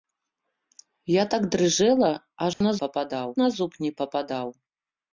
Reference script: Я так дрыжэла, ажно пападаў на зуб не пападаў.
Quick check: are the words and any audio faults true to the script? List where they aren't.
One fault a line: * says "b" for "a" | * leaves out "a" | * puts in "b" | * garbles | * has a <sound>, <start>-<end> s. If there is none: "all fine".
* has a dropout, 2.5-2.6 s